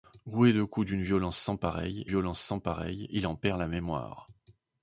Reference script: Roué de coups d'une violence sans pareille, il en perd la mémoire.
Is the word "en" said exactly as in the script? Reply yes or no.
yes